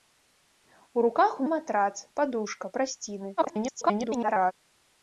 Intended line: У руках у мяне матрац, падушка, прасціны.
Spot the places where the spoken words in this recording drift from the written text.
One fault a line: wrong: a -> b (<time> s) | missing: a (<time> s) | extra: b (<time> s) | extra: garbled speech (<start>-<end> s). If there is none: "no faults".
missing: мяне (1.4 s)
extra: garbled speech (3.4-4.5 s)